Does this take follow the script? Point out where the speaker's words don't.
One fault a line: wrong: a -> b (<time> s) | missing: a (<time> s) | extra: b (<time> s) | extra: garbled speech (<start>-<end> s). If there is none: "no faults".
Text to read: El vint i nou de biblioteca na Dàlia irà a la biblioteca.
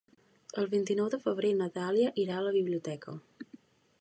wrong: biblioteca -> febrer (1.2 s)